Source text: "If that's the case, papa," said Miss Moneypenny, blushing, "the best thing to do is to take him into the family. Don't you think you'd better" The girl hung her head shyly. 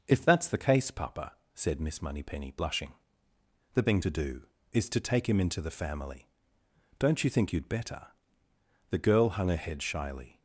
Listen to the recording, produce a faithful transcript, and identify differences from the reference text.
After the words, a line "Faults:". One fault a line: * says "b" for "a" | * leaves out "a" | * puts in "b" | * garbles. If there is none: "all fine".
"If that's the case, papa," said Miss Moneypenny, blushing, "the thing to do is to take him into the family. Don't you think you'd better" The girl hung her head shyly.
Faults:
* leaves out "best"